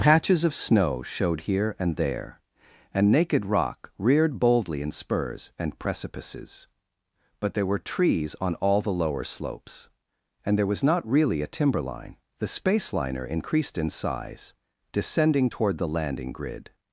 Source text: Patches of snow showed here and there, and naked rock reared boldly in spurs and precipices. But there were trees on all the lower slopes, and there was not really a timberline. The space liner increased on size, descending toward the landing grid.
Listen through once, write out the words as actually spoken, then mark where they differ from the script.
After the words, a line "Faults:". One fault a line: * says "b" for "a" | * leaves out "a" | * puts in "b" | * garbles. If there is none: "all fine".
Patches of snow showed here and there, and naked rock reared boldly in spurs and precipices. But there were trees on all the lower slopes, and there was not really a timberline. The space liner increased in size, descending toward the landing grid.
Faults:
* says "in" for "on"